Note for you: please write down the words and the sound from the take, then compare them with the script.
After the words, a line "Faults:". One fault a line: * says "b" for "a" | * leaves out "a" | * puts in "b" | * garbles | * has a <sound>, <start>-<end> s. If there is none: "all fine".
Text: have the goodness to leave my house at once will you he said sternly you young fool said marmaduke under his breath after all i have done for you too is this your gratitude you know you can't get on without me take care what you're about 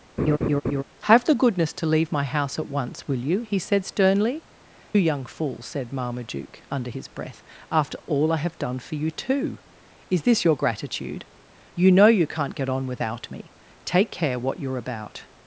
have the goodness to leave my house at once will you he said sternly young fool said marmaduke under his breath after all i have done for you too is this your gratitude you know you can't get on without me take care what you're about
Faults:
* has a laugh, 0.2-0.8 s
* leaves out "you"